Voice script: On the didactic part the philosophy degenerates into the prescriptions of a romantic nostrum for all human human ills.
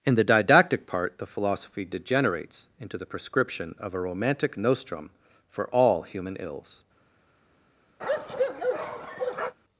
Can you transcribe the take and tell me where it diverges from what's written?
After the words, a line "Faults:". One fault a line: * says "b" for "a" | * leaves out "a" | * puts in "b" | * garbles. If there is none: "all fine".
In the didactic part the philosophy degenerates into the prescription of a romantic nostrum for all human ills.
Faults:
* says "In" for "On"
* says "prescription" for "prescriptions"
* leaves out "human"